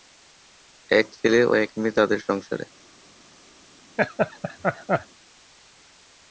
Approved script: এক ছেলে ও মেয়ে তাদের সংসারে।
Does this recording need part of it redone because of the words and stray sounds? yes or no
yes